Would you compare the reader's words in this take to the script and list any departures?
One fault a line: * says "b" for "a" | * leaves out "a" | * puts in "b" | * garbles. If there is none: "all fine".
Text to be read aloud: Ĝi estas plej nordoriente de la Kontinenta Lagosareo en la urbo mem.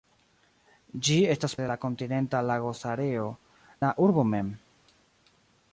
* leaves out "plej nordoriente"
* leaves out "en"